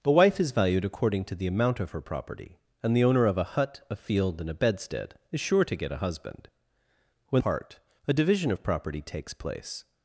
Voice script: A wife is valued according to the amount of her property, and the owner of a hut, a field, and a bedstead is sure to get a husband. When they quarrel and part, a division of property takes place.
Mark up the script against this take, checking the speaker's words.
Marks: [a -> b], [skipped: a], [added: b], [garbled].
A wife is valued according to the amount of her property, and the owner of a hut, a field, and a bedstead is sure to get a husband. When [skipped: they quarrel and] part, a division of property takes place.